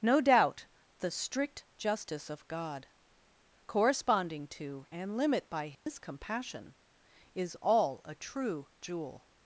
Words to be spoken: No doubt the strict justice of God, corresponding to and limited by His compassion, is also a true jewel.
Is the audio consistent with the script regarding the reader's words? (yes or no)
no